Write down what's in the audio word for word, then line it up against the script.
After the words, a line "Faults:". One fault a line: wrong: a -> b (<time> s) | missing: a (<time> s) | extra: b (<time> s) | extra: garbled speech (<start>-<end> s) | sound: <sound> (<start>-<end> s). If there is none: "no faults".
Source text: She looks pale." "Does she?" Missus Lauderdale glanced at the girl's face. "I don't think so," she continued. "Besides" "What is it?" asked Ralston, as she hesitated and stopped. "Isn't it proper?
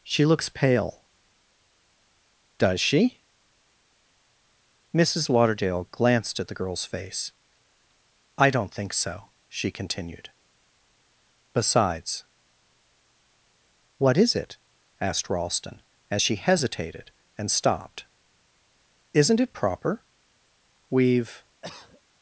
She looks pale." "Does she?" Missus Lauderdale glanced at the girl's face. "I don't think so," she continued. "Besides" "What is it?" asked Ralston, as she hesitated and stopped. "Isn't it proper? We've
Faults:
extra: We've (20.9 s)
sound: cough (21.6-22.0 s)